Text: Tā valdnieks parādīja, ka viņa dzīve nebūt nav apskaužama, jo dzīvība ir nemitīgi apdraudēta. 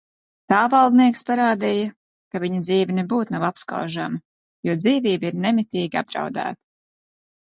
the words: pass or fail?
pass